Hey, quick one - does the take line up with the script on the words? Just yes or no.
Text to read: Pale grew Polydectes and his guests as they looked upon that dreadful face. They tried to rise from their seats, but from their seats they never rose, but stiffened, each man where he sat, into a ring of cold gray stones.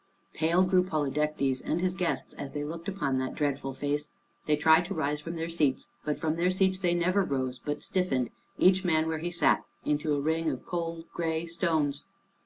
yes